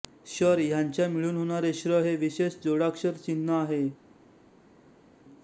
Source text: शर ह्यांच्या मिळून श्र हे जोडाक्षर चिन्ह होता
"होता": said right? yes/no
no